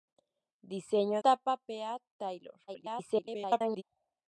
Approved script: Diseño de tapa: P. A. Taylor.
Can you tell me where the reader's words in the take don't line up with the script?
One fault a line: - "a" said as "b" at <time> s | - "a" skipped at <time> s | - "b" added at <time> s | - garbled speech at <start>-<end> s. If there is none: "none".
- "de" skipped at 1.2 s
- garbled speech at 2.7-3.8 s